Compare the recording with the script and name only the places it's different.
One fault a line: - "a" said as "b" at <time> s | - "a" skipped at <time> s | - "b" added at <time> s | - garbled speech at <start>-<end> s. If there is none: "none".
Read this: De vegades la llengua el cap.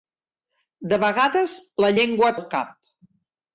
none